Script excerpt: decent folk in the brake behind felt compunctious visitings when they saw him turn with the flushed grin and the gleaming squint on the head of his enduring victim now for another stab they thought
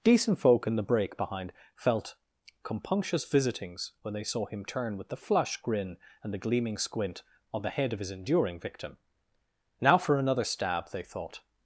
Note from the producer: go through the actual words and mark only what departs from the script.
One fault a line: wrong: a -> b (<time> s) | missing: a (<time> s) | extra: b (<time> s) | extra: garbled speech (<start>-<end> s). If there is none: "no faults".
wrong: flushed -> flush (5.2 s)